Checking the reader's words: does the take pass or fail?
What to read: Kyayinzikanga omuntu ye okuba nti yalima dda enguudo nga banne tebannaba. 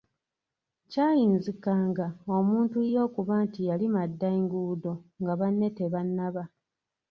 pass